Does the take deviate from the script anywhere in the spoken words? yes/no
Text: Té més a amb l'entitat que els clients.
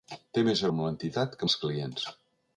no